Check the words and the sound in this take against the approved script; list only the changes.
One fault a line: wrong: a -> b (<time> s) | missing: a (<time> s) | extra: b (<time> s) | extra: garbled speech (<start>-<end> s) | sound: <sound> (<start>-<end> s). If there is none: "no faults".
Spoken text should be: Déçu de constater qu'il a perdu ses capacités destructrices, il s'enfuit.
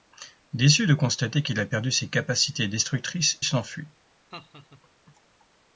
missing: il (3.4 s)
sound: laugh (4.3-4.8 s)